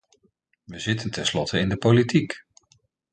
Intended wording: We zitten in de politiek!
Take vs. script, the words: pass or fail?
fail